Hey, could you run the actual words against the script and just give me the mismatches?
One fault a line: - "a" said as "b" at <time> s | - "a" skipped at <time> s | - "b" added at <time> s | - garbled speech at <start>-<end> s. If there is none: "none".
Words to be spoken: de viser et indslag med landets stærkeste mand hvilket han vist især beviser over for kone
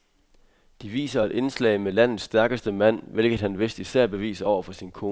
- "sin" added at 4.7 s